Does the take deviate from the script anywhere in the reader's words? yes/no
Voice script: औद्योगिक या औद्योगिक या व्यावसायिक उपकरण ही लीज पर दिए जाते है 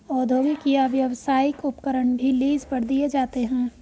yes